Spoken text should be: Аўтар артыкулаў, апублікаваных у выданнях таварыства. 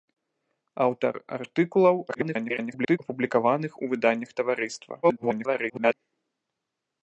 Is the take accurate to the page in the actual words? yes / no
no